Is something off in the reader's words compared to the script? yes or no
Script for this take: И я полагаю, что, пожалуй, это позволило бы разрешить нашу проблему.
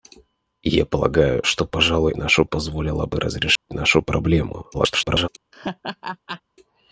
yes